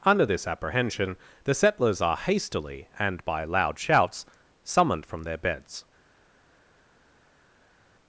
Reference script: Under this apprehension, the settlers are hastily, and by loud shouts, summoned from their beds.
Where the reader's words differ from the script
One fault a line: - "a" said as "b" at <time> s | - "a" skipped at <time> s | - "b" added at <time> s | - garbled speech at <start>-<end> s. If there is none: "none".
none